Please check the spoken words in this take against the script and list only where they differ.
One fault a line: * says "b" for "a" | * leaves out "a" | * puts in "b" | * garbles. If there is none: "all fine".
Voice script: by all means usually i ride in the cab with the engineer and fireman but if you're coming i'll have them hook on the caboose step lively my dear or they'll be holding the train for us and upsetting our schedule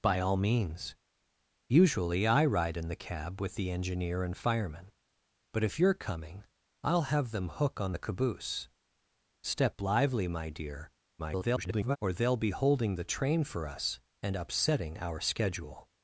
* garbles